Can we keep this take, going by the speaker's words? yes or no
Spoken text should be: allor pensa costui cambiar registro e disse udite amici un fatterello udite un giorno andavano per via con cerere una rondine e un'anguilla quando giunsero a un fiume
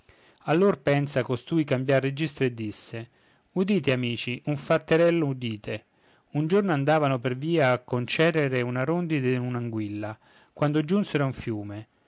yes